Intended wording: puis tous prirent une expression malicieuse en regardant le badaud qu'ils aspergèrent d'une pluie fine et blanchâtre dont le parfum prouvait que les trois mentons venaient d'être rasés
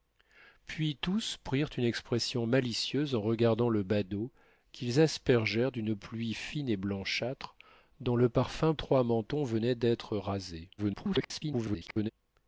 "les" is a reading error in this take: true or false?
true